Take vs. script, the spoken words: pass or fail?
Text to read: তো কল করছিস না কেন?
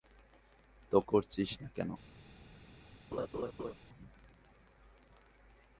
fail